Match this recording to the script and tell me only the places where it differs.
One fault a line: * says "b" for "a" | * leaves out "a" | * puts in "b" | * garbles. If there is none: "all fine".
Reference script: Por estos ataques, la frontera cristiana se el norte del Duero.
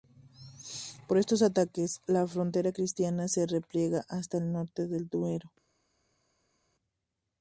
* puts in "repliega hasta"